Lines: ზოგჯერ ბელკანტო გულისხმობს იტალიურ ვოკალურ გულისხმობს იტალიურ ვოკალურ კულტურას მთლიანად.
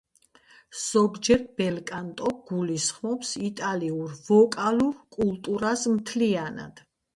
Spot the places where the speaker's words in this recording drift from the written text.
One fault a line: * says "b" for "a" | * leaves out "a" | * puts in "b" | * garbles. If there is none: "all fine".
* leaves out "გულისხმობს იტალიურ ვოკალურ"